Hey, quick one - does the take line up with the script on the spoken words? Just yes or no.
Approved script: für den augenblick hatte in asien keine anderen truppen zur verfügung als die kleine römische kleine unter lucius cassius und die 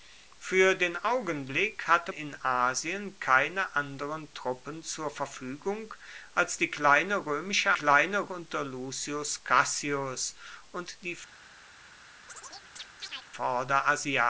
yes